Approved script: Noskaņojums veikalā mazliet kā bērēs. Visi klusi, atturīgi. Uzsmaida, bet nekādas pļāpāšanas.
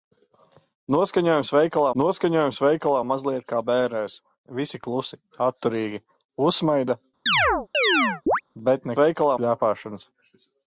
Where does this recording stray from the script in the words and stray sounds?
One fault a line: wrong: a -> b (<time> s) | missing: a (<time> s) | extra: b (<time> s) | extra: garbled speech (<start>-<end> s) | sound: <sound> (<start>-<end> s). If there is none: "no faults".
extra: noskaņojums veikalā (2.0 s)
sound: chirp (7.3-8.4 s)
wrong: nekādas -> veikalā (9.0 s)